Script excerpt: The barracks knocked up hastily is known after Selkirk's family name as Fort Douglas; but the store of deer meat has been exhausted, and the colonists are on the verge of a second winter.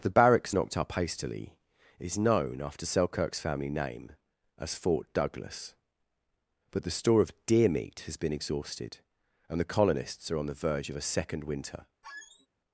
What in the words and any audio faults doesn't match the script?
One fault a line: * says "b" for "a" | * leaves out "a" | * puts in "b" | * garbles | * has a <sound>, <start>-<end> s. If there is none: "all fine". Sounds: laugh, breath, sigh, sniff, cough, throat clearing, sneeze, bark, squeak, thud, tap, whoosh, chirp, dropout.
* has a squeak, 12.0-12.5 s